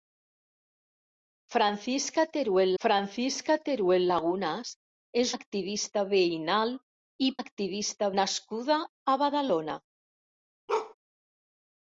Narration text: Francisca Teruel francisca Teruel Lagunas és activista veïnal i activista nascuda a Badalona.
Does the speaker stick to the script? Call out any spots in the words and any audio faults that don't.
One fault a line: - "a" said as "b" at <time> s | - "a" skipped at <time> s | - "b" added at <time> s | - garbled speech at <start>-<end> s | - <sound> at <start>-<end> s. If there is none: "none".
- bark at 10.7-10.9 s